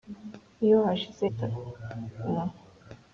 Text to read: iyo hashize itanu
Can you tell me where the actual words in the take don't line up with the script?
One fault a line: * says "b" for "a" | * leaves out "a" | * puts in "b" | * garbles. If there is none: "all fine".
all fine